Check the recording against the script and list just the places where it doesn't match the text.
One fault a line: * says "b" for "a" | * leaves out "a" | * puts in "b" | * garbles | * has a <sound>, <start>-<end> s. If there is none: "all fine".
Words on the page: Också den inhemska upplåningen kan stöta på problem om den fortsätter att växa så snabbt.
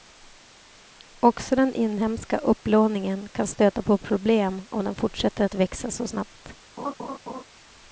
* has a laugh, 6.8-7.4 s